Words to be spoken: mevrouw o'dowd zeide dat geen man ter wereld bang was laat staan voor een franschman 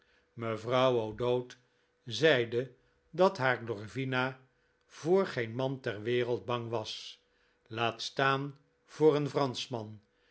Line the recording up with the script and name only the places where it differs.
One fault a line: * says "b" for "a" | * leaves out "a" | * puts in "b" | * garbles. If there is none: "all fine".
* puts in "haar glorvina voor"